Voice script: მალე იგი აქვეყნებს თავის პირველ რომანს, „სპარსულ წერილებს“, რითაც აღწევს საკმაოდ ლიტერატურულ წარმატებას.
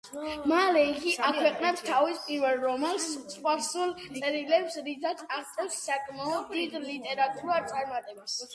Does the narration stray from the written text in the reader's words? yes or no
yes